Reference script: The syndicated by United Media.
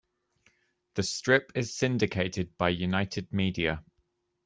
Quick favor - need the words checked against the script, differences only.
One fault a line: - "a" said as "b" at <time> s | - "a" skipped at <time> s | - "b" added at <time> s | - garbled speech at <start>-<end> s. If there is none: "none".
- "strip is" added at 1.0 s